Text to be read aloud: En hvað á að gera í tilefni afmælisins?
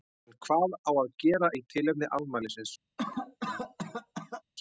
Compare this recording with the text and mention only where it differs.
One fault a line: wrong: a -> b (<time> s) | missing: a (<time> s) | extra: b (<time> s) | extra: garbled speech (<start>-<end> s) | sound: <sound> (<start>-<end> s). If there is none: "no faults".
sound: cough (3.0-4.4 s)